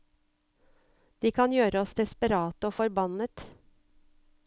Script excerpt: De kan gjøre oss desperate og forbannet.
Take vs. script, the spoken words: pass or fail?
pass